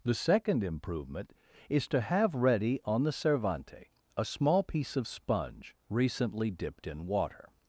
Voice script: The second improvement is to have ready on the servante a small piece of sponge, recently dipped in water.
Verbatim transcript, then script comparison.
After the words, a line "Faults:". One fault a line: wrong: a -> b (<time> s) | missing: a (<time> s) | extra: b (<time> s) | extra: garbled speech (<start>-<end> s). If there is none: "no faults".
The second improvement is to have ready on the servante a small piece of sponge, recently dipped in water.
Faults:
no faults